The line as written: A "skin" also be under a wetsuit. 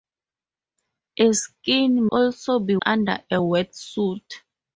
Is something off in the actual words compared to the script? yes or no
no